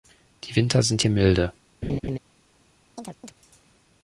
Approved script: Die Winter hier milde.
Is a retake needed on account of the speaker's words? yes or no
yes